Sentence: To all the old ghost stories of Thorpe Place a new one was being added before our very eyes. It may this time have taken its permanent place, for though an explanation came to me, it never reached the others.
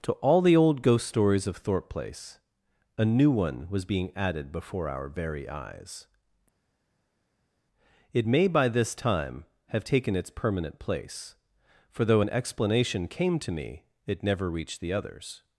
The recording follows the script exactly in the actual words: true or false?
false